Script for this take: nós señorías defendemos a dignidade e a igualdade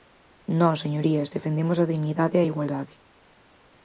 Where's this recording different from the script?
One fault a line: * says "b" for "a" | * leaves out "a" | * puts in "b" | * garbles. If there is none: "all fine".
all fine